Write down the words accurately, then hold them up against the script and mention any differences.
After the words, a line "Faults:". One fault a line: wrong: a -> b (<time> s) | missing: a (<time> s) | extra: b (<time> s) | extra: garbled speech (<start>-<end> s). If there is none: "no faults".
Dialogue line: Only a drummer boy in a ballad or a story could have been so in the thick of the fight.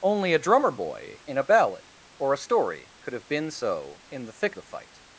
Only a drummer boy in a ballad or a story could have been so in the thick the fight.
Faults:
missing: of (4.5 s)